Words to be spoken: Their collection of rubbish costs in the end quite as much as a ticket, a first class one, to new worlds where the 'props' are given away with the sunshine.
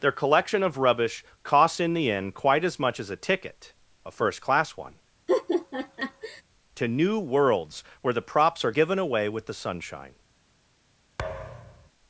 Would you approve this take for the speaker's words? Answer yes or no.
yes